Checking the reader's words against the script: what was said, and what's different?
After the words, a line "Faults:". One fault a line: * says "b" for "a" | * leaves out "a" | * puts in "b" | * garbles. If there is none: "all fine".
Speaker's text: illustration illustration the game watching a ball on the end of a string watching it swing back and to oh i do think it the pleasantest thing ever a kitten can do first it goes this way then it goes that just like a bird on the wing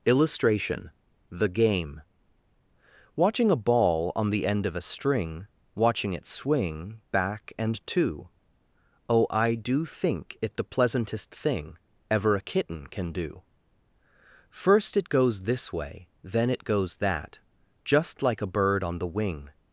illustration the game watching a ball on the end of a string watching it swing back and to oh i do think it the pleasantest thing ever a kitten can do first it goes this way then it goes that just like a bird on the wing
Faults:
* leaves out "illustration"